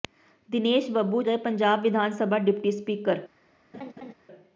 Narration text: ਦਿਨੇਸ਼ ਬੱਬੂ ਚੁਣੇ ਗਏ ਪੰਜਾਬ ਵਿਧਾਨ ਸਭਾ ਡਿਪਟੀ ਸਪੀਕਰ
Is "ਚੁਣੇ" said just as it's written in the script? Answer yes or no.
no